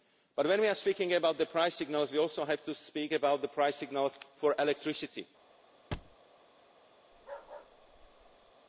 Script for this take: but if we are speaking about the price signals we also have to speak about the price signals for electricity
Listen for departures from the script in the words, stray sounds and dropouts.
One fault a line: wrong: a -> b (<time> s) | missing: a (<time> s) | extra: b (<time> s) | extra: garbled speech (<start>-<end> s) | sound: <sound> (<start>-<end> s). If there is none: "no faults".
wrong: if -> when (0.5 s)
sound: thud (5.9-6.2 s)
sound: bark (7.1-8.5 s)